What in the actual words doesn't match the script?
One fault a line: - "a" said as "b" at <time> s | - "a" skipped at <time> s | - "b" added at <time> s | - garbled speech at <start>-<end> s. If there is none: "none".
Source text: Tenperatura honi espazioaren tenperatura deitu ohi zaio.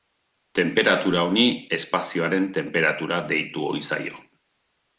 none